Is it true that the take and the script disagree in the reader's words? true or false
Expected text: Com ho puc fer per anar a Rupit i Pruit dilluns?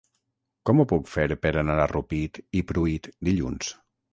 false